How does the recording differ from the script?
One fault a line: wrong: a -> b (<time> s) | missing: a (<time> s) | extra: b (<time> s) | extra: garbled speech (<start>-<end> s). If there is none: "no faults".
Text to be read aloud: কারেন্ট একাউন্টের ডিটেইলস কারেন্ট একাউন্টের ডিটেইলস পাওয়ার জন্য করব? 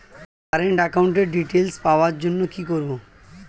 missing: কারেন্ট একাউন্টের ডিটেইলস (1.8 s)
extra: কি (2.5 s)